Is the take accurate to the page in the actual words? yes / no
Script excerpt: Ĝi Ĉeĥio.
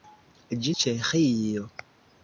yes